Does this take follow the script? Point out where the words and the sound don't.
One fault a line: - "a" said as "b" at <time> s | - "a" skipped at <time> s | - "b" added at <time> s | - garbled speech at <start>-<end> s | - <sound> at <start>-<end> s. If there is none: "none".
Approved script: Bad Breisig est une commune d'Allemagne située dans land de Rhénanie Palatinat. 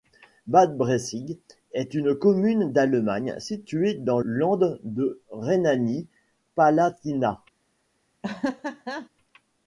- laugh at 8.2-9.1 s